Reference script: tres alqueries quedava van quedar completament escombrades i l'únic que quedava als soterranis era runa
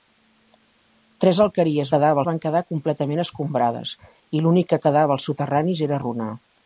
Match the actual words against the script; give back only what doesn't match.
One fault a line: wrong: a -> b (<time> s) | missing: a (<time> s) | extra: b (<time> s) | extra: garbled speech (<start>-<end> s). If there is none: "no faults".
no faults